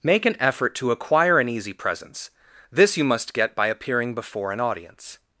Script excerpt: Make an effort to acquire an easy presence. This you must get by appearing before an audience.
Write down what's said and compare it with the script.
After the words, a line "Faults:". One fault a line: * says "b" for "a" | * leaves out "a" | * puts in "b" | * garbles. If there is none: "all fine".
Make an effort to acquire an easy presence. This you must get by appearing before an audience.
Faults:
all fine